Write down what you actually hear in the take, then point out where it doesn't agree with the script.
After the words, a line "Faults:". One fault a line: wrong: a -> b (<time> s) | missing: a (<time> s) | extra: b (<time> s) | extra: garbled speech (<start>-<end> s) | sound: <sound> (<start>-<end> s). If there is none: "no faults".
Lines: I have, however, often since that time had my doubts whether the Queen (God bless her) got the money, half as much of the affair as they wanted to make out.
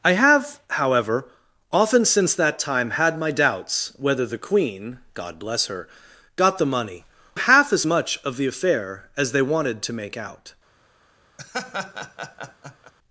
I have, however, often since that time had my doubts whether the Queen (God bless her) got the money, half as much of the affair as they wanted to make out.
Faults:
sound: laugh (11.4-12.9 s)